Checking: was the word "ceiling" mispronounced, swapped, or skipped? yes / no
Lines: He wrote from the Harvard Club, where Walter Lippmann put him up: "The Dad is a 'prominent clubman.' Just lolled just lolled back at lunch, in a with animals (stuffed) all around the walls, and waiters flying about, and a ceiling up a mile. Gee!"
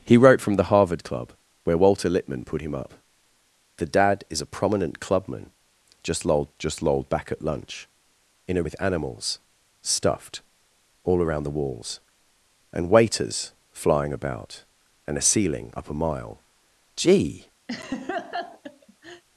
no